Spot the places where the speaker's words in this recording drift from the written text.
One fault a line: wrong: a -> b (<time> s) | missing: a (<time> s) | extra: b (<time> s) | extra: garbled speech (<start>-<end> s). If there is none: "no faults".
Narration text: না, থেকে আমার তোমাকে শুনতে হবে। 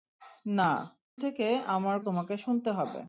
no faults